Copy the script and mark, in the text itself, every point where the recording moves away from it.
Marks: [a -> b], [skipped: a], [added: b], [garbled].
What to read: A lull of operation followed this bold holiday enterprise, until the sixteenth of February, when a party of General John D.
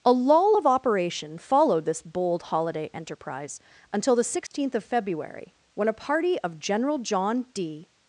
A lull of operation followed this bold holiday enterprise, until the sixteenth of February, when a party of General John D.